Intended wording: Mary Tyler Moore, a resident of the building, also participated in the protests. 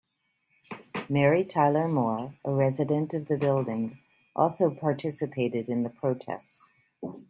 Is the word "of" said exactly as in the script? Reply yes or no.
yes